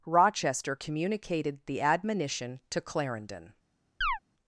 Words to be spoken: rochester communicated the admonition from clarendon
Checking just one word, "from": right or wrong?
wrong